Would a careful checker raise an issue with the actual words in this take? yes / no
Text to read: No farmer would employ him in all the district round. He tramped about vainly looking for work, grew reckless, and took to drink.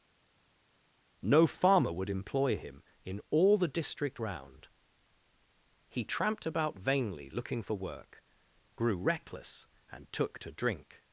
no